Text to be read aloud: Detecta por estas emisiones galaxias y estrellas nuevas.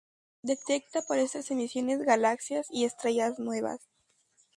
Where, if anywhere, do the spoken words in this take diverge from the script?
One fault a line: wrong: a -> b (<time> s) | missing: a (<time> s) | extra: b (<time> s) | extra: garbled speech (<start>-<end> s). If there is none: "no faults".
no faults